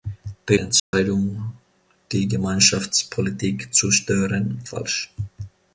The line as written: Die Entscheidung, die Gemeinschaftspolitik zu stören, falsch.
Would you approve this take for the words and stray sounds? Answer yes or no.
no